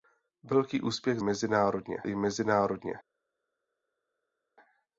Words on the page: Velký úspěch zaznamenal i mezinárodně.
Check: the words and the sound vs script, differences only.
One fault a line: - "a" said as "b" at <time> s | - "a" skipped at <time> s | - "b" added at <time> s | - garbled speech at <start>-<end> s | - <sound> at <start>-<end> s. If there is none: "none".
- "zaznamenal" said as "mezinárodně" at 1.2 s